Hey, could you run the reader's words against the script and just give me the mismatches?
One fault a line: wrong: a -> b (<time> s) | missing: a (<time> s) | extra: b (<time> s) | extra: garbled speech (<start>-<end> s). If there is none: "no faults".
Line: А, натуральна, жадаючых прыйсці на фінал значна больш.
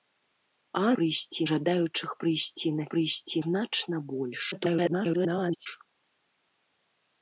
wrong: натуральна -> прыйсці (1.0 s)
wrong: фінал -> прыйсці (2.9 s)
extra: garbled speech (4.5-5.7 s)